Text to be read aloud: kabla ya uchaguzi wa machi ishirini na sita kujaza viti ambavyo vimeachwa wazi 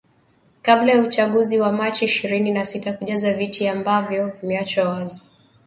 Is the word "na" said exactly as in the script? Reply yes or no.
yes